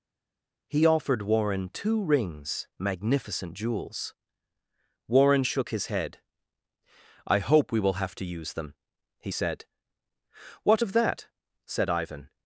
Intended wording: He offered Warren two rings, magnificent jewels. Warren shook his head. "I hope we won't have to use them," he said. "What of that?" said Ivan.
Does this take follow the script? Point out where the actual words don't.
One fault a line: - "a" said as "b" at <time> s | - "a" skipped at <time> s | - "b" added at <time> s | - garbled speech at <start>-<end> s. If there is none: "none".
- "won't" said as "will" at 7.8 s